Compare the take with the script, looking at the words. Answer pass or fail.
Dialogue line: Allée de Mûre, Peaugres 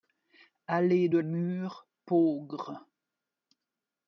pass